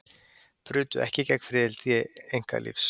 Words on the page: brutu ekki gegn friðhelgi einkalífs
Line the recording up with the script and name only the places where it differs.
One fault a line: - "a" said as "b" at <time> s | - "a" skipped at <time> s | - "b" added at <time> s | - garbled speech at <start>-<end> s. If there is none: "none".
none